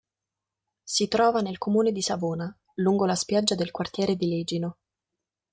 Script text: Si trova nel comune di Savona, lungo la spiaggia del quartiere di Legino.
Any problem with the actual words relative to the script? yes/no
no